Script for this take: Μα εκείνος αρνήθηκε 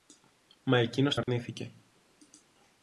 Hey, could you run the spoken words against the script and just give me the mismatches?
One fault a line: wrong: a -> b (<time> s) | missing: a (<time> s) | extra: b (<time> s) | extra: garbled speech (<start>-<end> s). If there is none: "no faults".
no faults